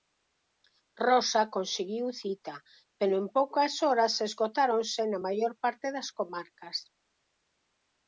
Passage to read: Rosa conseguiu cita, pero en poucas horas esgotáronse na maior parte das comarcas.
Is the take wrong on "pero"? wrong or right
right